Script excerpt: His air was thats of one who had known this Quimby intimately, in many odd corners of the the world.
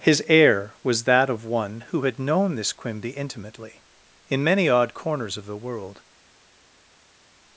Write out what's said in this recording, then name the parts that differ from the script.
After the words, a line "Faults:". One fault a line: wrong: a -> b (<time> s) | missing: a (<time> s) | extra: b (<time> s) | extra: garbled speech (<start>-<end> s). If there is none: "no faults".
His air was that of one who had known this Quimby intimately, in many odd corners of the world.
Faults:
wrong: thats -> that (1.0 s)
missing: the (5.6 s)